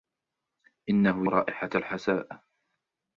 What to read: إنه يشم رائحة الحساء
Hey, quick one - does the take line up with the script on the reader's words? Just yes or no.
no